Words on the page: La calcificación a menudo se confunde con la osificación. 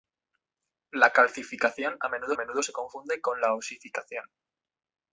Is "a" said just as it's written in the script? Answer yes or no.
yes